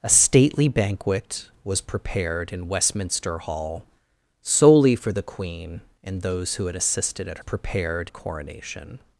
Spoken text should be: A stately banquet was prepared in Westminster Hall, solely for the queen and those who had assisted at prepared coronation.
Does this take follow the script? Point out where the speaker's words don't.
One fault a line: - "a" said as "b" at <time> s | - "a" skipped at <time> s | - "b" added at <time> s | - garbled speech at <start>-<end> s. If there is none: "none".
none